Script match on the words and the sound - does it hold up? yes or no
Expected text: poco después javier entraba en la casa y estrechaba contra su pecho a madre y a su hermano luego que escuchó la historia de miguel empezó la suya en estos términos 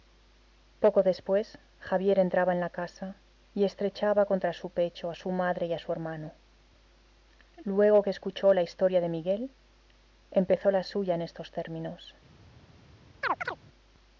no